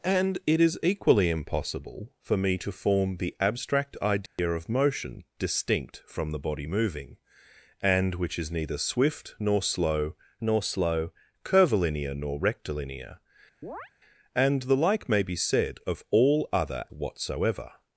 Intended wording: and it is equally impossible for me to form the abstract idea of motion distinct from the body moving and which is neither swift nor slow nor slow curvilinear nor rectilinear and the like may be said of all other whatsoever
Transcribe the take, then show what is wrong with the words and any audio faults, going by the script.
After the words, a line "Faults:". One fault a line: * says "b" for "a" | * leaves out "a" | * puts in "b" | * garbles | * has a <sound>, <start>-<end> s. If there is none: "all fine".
and it is equally impossible for me to form the abstract idea of motion distinct from the body moving and which is neither swift nor slow nor slow curvilinear nor rectilinear and the like may be said of all other whatsoever
Faults:
* has a dropout, 4.3-4.4 s
* has a chirp, 13.6-13.9 s